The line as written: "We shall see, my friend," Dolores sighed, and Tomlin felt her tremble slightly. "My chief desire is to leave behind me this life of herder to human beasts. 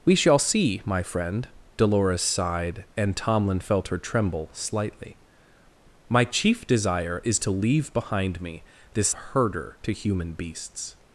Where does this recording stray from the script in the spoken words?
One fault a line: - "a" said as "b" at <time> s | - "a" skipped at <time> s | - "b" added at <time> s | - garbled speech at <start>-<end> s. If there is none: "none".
- "life of" skipped at 9.1 s